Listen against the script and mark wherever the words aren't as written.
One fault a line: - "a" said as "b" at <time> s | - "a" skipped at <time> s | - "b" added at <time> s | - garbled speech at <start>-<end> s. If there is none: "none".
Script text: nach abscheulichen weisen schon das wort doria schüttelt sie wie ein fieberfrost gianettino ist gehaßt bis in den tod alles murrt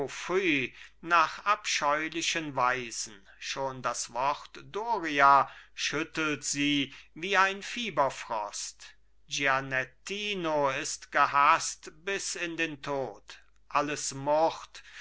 none